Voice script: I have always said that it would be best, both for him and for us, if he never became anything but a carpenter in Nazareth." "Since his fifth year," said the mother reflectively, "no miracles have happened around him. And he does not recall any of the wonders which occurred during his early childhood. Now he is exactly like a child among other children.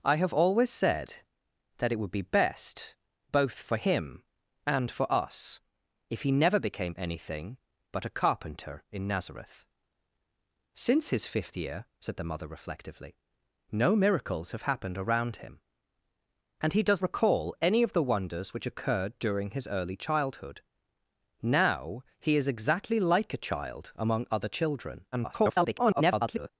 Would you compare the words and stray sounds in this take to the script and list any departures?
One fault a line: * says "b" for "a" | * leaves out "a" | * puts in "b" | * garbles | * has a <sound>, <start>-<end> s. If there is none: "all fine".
* leaves out "not"
* garbles